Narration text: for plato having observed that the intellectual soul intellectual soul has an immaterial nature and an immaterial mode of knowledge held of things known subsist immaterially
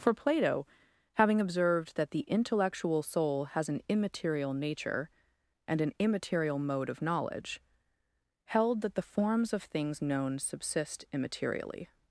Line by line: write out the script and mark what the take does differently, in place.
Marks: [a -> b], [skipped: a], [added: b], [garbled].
for plato having observed that the intellectual soul [skipped: intellectual soul] has an immaterial nature and an immaterial mode of knowledge held [added: that the forms] of things known subsist immaterially